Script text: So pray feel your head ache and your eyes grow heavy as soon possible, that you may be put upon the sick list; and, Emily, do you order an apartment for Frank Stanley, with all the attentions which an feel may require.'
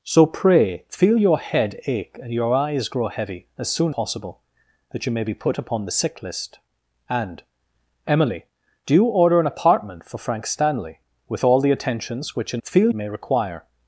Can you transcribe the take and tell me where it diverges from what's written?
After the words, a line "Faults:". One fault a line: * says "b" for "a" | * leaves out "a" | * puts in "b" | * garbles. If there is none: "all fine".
So pray feel your head ache and your eyes grow heavy as soon possible, that you may be put upon the sick list; and, Emily, do you order an apartment for Frank Stanley, with all the attentions which an feel may require.'
Faults:
all fine